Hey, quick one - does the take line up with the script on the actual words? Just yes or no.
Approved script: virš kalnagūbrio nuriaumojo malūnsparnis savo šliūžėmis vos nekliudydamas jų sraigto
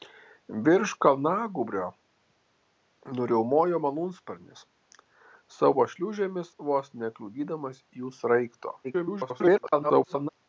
no